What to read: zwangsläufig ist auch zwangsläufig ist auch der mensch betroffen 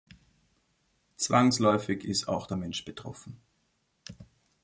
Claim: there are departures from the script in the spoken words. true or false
true